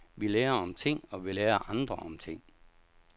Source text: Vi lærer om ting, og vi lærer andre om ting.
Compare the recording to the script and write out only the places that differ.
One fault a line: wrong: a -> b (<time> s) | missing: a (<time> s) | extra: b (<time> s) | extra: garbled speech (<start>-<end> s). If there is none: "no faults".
no faults